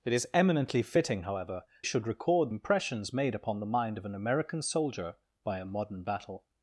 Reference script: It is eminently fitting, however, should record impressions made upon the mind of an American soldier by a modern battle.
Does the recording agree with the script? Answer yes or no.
yes